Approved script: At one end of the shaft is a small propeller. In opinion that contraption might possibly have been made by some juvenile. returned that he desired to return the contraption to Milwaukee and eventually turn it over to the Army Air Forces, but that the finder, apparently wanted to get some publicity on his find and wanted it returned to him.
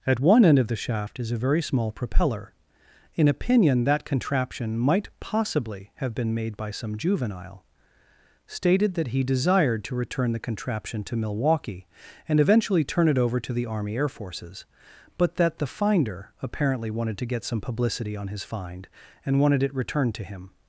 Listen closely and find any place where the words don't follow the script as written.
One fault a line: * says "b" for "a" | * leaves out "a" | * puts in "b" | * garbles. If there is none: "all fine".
* puts in "very"
* says "stated" for "returned"